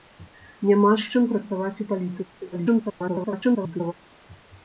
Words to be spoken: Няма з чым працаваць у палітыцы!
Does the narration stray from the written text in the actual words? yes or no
yes